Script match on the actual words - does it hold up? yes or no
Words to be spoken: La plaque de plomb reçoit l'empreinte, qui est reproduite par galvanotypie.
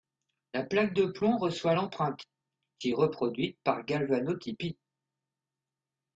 yes